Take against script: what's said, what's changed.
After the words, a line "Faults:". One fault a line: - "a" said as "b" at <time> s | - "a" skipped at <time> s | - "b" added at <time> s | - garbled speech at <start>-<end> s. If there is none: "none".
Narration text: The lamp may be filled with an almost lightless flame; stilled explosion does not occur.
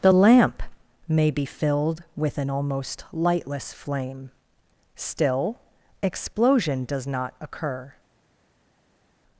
The lamp may be filled with an almost lightless flame; still explosion does not occur.
Faults:
- "stilled" said as "still" at 4.9 s